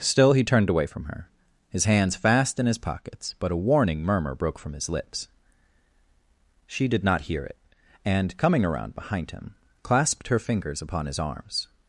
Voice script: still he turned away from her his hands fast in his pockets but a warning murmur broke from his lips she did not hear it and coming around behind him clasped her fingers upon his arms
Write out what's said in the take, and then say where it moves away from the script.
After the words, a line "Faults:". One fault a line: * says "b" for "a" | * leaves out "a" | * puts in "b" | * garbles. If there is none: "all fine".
still he turned away from her his hands fast in his pockets but a warning murmur broke from his lips she did not hear it and coming around behind him clasped her fingers upon his arms
Faults:
all fine